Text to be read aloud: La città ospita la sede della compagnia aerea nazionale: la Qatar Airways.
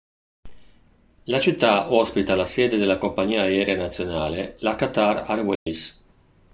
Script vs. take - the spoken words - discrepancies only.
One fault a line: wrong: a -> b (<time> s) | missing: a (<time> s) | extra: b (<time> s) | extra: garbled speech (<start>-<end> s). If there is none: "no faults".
no faults